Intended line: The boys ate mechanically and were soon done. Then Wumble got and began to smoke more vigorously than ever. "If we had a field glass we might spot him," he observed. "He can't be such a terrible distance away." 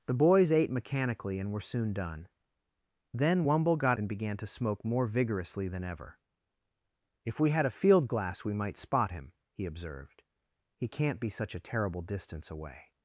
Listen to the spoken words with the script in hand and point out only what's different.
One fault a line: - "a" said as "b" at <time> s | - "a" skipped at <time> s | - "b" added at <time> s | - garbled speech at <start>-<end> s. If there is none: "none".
none